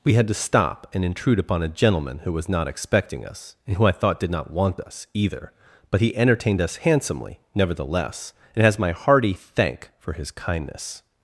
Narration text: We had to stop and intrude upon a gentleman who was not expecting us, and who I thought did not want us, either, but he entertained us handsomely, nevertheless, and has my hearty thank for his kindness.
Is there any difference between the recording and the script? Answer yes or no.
no